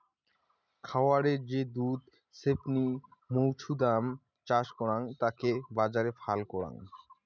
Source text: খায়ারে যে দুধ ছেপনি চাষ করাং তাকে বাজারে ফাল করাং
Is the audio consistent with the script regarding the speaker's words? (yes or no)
no